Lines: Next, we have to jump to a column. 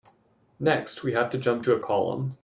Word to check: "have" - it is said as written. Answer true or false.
true